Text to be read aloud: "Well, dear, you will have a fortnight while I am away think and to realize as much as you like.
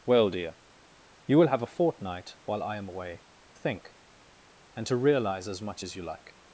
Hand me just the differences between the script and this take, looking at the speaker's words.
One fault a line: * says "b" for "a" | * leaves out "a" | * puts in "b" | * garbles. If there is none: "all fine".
all fine